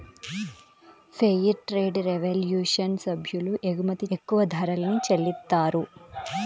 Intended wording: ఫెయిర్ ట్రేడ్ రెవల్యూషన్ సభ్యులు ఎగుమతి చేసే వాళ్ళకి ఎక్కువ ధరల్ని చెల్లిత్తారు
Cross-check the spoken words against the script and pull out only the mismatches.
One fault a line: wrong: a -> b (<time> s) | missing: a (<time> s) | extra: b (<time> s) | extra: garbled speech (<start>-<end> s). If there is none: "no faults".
missing: చేసే వాళ్ళకి (4.1 s)